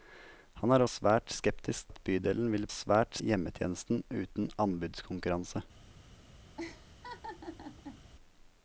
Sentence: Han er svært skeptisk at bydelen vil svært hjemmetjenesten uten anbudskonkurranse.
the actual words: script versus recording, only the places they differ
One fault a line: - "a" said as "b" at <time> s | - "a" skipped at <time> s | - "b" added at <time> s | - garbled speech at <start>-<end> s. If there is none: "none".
none